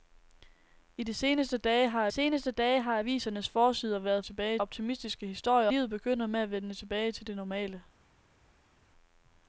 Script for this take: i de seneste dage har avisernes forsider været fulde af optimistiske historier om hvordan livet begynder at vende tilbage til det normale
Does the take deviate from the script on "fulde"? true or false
true